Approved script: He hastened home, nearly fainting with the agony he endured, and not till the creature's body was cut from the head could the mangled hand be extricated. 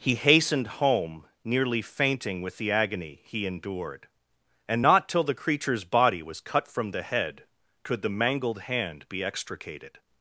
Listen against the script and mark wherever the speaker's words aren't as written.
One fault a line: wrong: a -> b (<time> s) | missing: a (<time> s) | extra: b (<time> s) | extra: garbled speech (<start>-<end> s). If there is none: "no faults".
no faults